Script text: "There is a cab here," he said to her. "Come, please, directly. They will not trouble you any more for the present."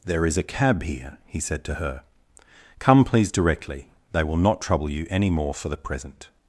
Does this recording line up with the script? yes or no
yes